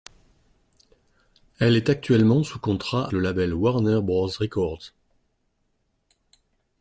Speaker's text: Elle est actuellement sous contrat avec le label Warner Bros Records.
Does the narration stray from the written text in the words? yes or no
yes